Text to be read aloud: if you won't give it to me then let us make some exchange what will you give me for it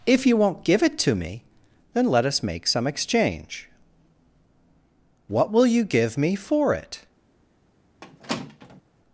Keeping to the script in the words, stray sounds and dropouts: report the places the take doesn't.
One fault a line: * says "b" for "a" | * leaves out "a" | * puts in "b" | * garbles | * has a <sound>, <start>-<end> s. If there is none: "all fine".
* has a squeak, 8.0-8.8 s